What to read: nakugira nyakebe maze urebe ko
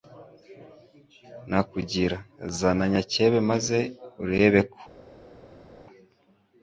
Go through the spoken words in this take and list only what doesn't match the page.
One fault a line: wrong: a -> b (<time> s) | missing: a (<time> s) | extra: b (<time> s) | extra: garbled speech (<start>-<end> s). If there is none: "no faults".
extra: zana (2.6 s)